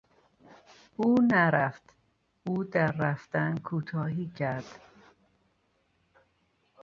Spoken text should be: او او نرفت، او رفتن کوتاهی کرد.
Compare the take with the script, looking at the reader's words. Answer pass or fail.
fail